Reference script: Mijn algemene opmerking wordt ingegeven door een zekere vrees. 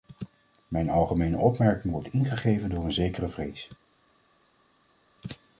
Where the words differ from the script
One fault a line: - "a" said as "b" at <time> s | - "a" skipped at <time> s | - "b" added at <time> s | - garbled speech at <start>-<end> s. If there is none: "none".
none